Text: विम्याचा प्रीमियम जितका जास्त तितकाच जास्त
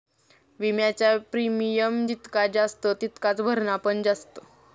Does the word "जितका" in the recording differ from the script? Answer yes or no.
no